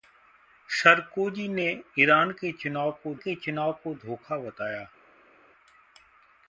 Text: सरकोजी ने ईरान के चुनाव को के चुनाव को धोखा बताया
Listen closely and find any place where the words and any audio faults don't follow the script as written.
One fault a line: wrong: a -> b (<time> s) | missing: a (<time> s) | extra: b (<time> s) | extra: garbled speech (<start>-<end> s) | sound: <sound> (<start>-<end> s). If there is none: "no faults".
no faults